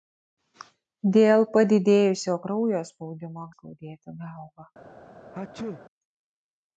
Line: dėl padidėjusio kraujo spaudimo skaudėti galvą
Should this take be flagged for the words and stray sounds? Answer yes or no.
yes